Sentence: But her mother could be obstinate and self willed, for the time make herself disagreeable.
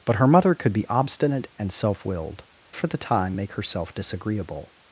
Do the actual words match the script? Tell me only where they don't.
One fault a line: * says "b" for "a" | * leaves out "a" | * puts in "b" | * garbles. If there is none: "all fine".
all fine